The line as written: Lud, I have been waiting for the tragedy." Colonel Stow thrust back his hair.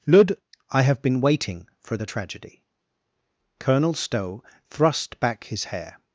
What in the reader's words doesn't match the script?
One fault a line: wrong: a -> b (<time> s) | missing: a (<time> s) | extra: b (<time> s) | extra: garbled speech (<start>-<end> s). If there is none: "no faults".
no faults